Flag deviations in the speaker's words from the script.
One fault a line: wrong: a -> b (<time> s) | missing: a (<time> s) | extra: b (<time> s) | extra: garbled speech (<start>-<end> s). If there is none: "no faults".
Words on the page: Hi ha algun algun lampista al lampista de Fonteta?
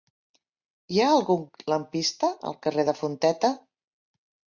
missing: algun (1.4 s)
wrong: lampista -> carrer (2.7 s)